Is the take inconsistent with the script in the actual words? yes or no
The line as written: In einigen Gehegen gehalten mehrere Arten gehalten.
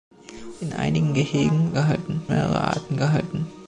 no